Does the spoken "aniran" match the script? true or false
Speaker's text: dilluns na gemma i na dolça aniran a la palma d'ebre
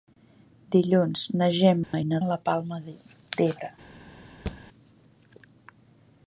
false